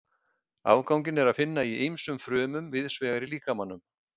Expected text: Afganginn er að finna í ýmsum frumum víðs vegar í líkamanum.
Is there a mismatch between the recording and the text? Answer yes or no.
no